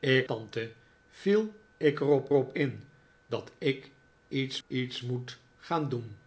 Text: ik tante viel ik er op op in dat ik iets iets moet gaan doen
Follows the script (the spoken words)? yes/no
yes